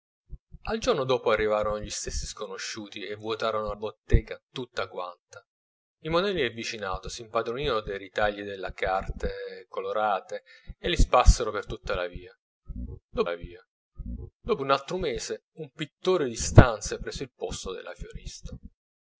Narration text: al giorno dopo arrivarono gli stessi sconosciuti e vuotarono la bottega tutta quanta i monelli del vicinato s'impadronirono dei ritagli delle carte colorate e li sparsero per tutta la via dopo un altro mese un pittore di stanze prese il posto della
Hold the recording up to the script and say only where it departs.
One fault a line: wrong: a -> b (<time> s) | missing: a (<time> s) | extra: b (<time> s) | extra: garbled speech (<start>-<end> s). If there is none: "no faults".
missing: la (3.7 s)
extra: la via dopo (13.2 s)